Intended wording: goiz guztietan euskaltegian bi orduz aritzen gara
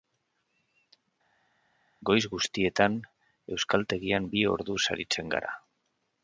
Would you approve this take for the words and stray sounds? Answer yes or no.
yes